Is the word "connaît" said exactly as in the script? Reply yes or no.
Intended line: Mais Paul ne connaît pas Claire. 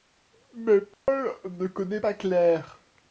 yes